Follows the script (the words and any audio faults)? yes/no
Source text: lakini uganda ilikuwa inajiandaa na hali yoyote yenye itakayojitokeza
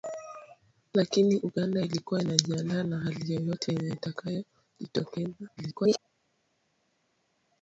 no